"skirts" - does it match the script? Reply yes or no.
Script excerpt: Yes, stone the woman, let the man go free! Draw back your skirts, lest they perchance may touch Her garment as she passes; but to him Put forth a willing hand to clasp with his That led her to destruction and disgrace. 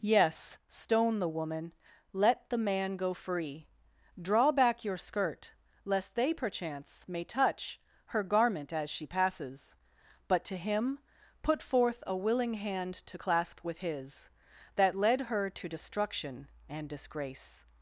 no